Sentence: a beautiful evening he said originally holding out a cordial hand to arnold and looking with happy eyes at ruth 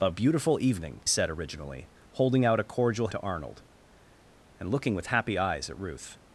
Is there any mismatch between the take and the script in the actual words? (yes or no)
yes